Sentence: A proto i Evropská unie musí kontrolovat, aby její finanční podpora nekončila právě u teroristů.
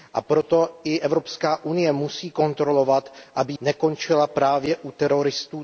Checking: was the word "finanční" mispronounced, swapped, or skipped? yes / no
yes